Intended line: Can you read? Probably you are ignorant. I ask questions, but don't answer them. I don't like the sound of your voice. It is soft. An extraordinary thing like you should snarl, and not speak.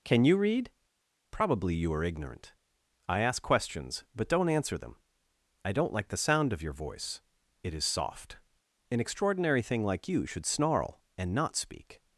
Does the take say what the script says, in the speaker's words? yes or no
yes